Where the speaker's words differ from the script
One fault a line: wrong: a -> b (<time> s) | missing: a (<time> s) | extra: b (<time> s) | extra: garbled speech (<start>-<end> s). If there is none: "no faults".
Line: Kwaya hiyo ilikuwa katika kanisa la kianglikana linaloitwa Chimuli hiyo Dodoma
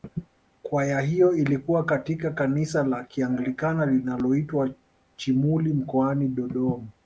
wrong: hiyo -> mkoani (5.7 s)